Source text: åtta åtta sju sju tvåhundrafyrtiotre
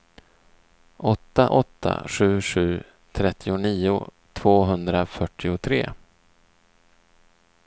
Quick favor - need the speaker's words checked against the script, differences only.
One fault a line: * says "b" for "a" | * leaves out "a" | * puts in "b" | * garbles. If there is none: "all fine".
* puts in "trettionio"